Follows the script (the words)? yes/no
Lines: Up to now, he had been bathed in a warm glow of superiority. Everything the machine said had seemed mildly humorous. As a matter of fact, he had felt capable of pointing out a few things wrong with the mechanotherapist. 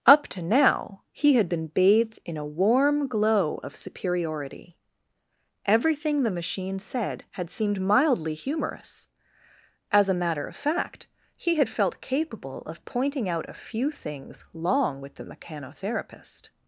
no